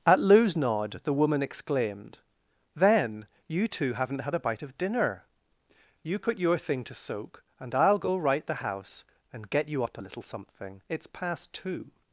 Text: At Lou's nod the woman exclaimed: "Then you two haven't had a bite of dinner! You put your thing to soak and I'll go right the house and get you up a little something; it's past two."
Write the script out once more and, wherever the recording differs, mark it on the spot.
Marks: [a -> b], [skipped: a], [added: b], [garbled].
At Lou's nod the woman exclaimed: "Then you two haven't had a bite of dinner! You put your thing to soak and I'll go right the house and get you up a little something; it's past two."